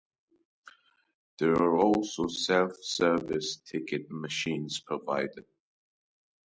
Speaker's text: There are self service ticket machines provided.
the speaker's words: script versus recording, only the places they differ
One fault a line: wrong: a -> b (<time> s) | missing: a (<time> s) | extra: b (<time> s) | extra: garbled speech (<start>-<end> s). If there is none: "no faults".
extra: also (1.8 s)